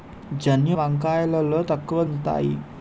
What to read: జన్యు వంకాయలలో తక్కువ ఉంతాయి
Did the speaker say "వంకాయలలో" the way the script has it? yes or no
yes